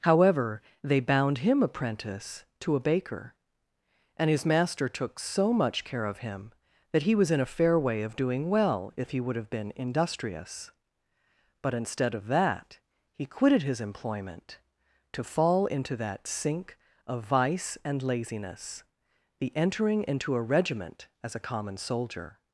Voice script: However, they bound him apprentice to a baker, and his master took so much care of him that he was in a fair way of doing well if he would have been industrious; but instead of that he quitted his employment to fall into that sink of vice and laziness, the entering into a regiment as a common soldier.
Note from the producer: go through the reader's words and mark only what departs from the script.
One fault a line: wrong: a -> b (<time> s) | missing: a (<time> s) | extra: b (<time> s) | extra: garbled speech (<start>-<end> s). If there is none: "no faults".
no faults